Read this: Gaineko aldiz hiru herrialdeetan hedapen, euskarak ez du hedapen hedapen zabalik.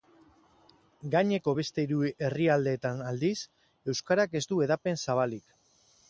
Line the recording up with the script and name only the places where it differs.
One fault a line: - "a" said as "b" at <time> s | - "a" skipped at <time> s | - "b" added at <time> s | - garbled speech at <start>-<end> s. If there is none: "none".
- "aldiz" said as "beste" at 1.6 s
- "hedapen" said as "aldiz" at 3.1 s
- "hedapen" skipped at 5.0 s